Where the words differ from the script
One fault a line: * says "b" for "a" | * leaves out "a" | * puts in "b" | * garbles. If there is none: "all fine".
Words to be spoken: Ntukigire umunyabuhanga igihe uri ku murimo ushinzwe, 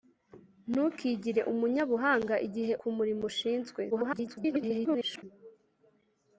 * leaves out "uri"
* garbles